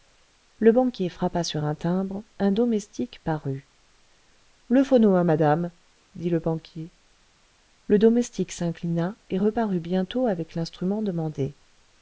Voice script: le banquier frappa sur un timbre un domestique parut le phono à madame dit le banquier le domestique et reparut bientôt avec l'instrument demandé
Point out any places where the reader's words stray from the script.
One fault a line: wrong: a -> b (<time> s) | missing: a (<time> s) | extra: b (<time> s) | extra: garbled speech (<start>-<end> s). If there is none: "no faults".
extra: s'inclina (8.5 s)